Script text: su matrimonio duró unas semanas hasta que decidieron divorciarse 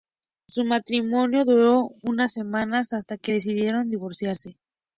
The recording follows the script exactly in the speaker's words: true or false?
true